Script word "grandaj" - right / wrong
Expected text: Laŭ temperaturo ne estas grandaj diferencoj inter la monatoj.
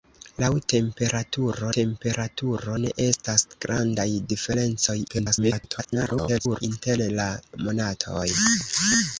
right